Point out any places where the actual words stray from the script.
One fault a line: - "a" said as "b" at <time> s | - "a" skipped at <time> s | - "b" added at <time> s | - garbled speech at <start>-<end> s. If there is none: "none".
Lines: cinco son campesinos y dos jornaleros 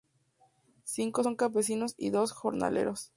none